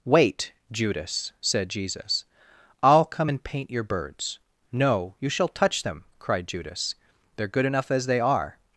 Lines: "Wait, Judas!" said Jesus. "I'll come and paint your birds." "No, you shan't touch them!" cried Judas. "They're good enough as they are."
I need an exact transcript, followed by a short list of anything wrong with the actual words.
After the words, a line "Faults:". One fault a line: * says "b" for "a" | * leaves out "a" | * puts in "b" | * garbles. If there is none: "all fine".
"Wait, Judas!" said Jesus. "I'll come and paint your birds." "No, you shall touch them!" cried Judas. "They're good enough as they are."
Faults:
* says "shall" for "shan't"